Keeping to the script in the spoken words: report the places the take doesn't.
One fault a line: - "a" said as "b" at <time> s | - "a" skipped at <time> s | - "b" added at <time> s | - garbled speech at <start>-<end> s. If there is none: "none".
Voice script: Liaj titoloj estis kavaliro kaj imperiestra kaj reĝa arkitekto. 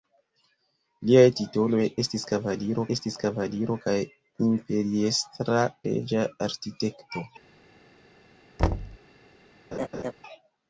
- "estis kavaliro" added at 3.0 s
- "kaj" skipped at 5.6 s